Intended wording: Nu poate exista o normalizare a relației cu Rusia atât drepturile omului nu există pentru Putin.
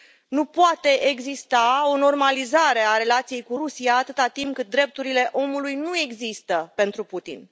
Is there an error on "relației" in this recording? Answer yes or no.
no